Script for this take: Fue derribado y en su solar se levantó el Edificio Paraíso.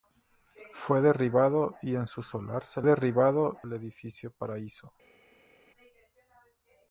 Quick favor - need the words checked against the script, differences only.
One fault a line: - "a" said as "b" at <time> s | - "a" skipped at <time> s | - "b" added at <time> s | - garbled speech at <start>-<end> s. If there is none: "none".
- "levantó" said as "derribado" at 2.8 s